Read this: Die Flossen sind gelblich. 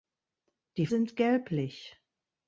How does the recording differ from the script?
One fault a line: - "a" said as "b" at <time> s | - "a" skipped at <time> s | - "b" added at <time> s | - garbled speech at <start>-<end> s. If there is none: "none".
- "Flossen" skipped at 0.9 s